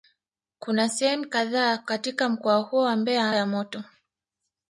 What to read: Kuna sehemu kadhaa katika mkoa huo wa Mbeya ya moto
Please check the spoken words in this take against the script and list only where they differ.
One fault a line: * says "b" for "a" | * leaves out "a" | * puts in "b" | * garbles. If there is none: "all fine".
all fine